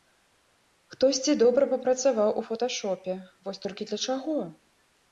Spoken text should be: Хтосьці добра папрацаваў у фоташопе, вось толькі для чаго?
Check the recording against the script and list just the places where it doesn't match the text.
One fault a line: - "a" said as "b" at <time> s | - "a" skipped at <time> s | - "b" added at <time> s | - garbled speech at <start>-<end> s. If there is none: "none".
none